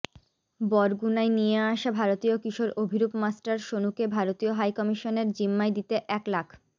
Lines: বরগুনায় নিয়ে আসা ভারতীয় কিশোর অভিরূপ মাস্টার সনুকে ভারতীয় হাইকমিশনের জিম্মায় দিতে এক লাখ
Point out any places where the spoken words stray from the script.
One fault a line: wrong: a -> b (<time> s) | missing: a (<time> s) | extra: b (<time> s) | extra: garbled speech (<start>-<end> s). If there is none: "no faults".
no faults